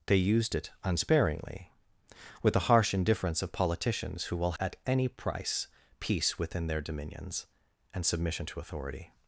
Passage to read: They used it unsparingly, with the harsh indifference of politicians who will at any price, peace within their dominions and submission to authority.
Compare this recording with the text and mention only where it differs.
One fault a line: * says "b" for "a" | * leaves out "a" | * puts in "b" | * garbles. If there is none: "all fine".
all fine